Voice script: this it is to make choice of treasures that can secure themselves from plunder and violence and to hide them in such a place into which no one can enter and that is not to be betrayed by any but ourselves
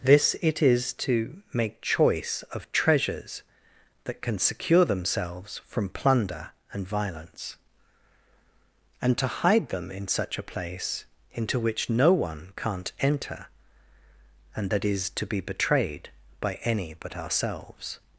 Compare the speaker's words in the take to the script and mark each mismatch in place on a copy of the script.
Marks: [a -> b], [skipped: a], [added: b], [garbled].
this it is to make choice of treasures that can secure themselves from plunder and violence and to hide them in such a place into which no one [can -> can't] enter and that is [skipped: not] to be betrayed by any but ourselves